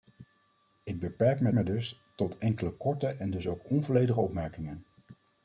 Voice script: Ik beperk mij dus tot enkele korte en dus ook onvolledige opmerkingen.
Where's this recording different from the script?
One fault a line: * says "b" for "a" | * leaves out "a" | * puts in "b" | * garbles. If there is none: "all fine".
* puts in "mij"